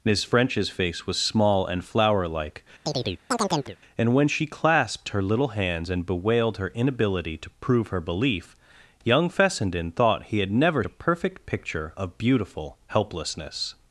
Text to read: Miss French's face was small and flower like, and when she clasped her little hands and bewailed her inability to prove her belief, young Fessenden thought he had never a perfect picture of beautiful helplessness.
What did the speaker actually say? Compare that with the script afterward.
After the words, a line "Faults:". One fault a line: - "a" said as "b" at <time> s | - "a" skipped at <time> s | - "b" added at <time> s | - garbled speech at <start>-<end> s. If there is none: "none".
Miss French's face was small and flower like, and when she clasped her little hands and bewailed her inability to prove her belief, young Fessenden thought he had never a perfect picture of beautiful helplessness.
Faults:
none